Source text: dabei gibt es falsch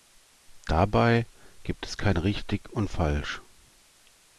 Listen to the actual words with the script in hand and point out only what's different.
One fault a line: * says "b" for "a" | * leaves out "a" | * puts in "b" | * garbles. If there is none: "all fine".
* puts in "kein richtig und"